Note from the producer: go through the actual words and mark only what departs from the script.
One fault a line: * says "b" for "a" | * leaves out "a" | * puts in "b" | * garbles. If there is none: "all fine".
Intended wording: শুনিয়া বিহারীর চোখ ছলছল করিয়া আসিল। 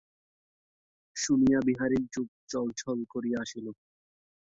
all fine